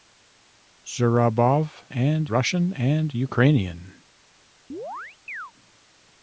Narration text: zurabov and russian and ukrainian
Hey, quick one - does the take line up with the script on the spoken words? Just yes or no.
yes